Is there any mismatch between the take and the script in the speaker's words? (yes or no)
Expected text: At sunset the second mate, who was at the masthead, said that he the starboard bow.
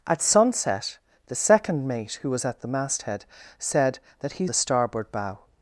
no